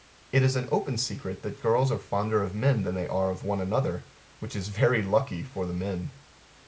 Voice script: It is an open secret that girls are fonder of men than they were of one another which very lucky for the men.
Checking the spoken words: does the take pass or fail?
fail